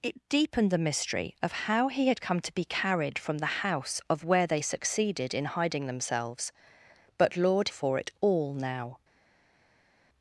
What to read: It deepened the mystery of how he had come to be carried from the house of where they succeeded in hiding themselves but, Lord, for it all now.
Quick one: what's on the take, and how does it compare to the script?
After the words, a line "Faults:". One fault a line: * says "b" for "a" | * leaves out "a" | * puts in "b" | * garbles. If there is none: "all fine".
It deepened the mystery of how he had come to be carried from the house of where they succeeded in hiding themselves but, Lord, for it all now.
Faults:
all fine